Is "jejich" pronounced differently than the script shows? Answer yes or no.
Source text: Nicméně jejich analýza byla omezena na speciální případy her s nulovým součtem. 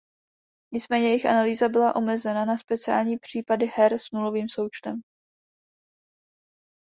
no